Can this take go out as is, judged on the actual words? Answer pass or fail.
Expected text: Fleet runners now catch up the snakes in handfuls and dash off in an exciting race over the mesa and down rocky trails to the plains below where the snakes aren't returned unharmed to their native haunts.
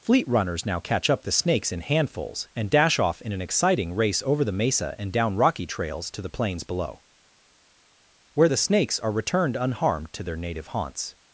fail